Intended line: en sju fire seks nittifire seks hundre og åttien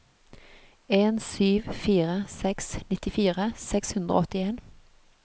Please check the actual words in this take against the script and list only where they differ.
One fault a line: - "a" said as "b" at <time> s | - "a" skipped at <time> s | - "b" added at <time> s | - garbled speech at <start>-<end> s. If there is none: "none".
none